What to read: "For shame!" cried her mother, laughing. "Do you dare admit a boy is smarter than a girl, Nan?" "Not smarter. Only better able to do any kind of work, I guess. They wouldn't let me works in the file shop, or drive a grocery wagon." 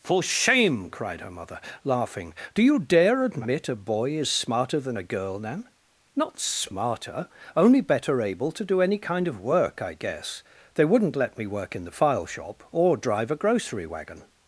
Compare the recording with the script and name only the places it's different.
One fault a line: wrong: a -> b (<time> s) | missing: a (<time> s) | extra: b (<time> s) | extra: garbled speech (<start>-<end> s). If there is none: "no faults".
wrong: works -> work (11.5 s)